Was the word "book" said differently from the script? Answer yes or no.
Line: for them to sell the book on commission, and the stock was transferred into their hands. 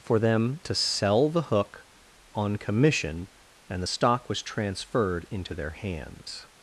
yes